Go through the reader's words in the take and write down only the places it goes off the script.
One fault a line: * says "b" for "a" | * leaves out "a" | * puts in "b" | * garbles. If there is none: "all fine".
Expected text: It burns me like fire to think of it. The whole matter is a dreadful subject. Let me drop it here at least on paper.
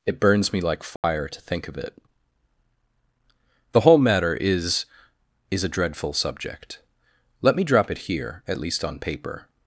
* puts in "is"